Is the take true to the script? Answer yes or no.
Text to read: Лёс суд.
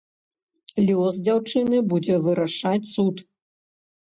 no